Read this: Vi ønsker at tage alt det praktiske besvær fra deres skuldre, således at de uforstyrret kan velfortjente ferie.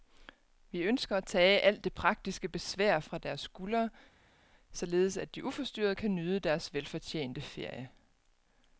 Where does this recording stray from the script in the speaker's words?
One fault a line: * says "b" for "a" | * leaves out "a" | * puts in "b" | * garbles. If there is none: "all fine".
* puts in "nyde deres"